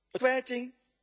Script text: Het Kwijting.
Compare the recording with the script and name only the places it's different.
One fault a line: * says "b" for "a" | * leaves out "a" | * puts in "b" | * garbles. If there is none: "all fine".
all fine